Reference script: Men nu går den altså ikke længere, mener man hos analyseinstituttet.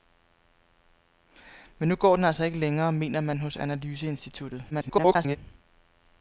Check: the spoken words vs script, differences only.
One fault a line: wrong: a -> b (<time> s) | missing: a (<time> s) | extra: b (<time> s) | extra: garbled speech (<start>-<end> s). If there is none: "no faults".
extra: garbled speech (4.7-5.4 s)